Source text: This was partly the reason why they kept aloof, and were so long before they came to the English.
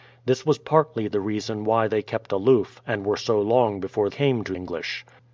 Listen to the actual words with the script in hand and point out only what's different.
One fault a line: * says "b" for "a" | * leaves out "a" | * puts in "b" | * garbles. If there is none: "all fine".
* leaves out "they"
* leaves out "the"